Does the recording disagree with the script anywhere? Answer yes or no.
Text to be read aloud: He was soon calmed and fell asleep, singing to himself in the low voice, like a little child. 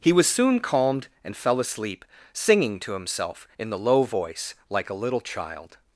no